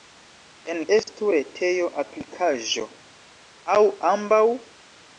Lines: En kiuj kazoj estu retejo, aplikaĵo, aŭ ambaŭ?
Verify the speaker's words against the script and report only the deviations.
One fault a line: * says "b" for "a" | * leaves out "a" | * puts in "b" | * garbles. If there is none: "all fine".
* leaves out "kiuj kazoj"